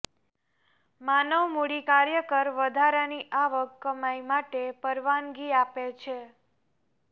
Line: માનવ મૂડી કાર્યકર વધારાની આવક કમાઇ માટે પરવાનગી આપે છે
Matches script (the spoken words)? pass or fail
pass